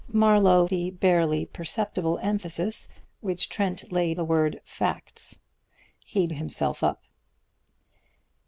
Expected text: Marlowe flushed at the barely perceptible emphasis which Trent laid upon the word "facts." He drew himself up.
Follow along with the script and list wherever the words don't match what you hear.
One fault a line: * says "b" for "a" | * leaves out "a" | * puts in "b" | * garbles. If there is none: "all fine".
* leaves out "flushed at"
* leaves out "upon"
* leaves out "drew"